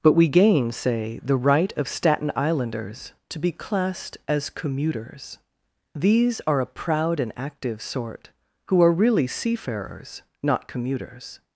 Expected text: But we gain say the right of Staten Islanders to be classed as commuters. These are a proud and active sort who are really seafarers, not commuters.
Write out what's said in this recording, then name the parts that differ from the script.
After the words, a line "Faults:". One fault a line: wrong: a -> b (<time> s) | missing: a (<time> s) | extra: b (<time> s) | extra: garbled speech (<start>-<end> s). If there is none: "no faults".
But we gain say the right of Staten Islanders to be classed as commuters. These are a proud and active sort who are really seafarers, not commuters.
Faults:
no faults